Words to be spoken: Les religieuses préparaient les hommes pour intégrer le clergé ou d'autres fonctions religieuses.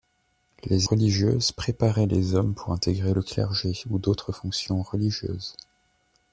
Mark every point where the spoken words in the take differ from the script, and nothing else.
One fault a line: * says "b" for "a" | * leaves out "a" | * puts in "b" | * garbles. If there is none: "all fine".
all fine